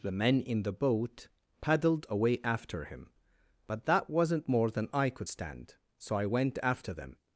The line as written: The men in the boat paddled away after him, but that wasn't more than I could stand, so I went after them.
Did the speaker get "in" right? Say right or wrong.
right